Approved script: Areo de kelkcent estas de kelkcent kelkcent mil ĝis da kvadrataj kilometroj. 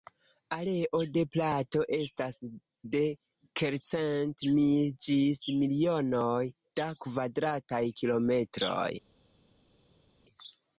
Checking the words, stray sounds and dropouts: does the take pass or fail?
fail